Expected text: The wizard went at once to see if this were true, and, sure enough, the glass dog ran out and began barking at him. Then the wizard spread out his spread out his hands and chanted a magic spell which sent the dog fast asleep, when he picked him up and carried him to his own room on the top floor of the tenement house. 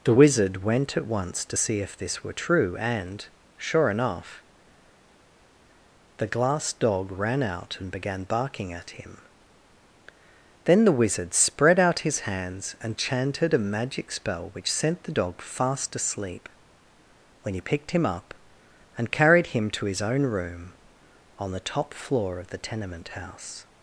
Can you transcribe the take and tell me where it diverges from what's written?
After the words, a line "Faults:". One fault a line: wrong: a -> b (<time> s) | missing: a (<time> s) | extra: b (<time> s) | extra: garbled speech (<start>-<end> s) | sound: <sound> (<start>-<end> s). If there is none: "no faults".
The wizard went at once to see if this were true, and, sure enough, the glass dog ran out and began barking at him. Then the wizard spread out his hands and chanted a magic spell which sent the dog fast asleep, when he picked him up and carried him to his own room on the top floor of the tenement house.
Faults:
missing: spread out his (12.2 s)